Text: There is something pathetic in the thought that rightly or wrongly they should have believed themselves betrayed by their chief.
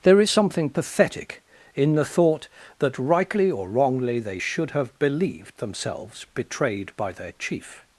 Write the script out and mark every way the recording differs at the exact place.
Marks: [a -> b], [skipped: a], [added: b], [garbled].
There is something pathetic in the thought that rightly or wrongly they should have believed themselves betrayed by their chief.